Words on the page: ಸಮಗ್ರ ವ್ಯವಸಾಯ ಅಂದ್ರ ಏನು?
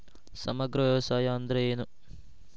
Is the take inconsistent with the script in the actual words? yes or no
no